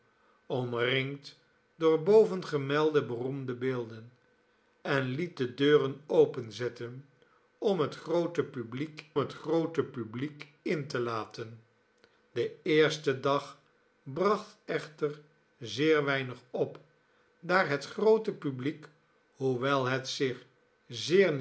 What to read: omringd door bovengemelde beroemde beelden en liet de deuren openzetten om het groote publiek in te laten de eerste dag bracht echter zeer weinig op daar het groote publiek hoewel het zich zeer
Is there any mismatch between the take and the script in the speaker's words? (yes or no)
yes